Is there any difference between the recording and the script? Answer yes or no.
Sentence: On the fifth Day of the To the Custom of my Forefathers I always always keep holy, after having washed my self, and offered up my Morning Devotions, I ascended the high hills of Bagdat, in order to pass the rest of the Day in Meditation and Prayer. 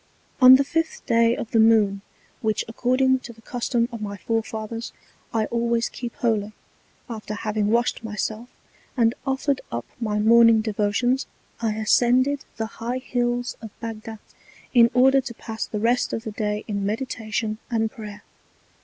yes